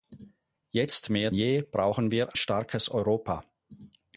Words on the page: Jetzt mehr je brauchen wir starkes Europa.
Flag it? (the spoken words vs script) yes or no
no